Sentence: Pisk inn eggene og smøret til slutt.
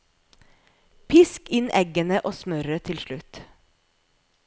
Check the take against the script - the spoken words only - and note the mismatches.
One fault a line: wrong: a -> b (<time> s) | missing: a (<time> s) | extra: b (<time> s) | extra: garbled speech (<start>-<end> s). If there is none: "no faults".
no faults